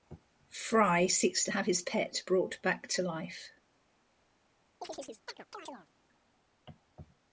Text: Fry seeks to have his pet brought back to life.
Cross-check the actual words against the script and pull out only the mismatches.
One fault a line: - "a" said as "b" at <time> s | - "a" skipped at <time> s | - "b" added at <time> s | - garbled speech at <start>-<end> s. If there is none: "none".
none